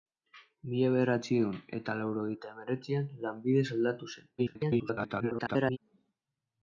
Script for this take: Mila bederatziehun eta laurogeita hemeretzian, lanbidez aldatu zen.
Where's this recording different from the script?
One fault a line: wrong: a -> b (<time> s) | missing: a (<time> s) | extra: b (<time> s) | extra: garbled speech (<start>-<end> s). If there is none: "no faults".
extra: garbled speech (4.4-5.8 s)